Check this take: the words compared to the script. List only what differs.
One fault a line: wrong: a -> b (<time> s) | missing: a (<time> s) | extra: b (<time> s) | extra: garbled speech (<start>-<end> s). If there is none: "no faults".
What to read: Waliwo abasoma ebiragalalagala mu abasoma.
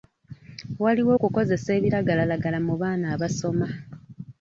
wrong: abasoma -> okukozesa (1.2 s)
extra: baana (2.8 s)